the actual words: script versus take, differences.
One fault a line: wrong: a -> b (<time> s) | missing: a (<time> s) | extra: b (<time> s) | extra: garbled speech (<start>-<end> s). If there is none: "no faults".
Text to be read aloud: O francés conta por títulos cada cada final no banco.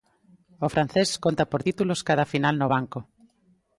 missing: cada (2.2 s)